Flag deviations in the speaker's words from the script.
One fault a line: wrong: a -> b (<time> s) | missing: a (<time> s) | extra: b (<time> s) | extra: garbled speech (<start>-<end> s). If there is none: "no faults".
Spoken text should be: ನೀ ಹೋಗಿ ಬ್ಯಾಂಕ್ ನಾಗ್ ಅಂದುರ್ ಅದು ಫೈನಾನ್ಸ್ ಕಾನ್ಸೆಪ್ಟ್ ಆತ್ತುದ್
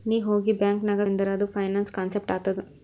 no faults